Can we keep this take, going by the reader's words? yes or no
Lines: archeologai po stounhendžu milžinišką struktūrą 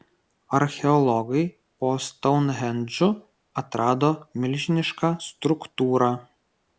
no